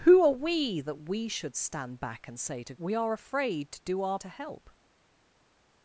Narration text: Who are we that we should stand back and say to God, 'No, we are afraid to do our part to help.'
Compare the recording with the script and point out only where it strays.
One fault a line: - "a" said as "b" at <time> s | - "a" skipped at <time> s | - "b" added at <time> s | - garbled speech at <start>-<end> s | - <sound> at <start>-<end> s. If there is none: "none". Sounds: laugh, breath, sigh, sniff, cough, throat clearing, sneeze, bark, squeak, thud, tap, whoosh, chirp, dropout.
- "God No" skipped at 2.7 s
- "part" skipped at 4.2 s